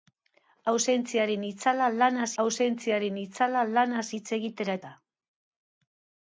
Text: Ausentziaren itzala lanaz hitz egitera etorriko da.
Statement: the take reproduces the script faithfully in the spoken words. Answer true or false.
false